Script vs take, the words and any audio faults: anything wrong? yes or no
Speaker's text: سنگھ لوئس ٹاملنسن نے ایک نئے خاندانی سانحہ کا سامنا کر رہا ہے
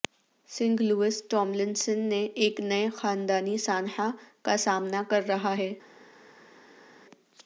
no